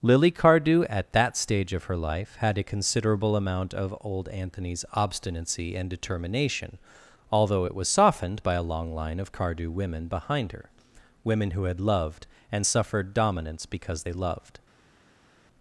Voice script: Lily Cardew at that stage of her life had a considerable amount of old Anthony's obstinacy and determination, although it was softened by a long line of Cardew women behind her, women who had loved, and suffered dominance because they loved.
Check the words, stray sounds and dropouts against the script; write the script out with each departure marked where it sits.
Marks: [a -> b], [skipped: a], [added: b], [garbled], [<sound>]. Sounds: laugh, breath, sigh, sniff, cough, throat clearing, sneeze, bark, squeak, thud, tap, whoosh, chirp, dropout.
Lily Cardew at that stage of her life had a considerable amount of old Anthony's obstinacy and determination, although it was softened by a long line of Cardew women behind her, women who had loved, and suffered dominance because they loved.